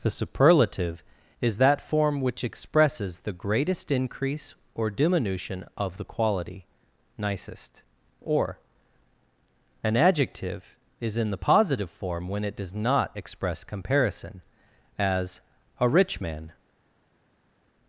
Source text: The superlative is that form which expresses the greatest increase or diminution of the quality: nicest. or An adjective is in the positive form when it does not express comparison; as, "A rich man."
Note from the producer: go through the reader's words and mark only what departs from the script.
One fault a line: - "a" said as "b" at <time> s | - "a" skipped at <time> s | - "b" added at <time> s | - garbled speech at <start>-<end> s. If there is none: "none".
none